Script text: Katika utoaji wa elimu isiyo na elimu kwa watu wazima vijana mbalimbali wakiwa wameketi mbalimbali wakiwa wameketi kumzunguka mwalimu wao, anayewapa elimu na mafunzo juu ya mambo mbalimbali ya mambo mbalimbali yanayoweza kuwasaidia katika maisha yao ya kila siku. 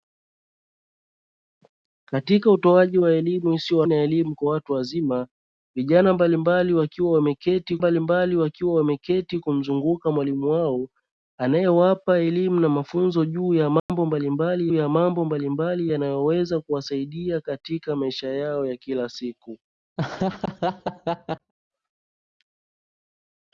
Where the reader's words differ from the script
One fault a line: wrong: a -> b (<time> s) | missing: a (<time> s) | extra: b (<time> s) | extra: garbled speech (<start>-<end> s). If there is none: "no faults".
no faults